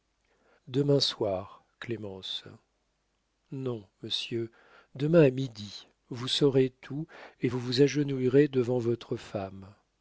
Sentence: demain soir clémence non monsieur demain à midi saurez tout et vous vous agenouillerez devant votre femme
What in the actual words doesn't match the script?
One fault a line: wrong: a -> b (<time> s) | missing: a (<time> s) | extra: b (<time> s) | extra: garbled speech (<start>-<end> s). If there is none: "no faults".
extra: vous (6.1 s)